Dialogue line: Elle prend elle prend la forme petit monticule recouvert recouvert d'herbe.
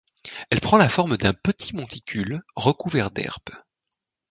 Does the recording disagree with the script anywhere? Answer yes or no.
yes